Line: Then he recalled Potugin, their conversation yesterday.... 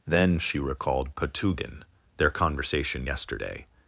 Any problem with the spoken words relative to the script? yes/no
yes